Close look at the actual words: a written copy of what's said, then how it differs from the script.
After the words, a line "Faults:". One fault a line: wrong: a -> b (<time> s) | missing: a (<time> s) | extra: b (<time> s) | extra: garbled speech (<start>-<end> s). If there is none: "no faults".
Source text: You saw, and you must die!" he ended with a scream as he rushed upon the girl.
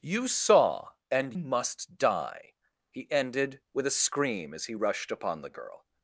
You saw, and must die!" he ended with a scream as he rushed upon the girl.
Faults:
missing: you (1.3 s)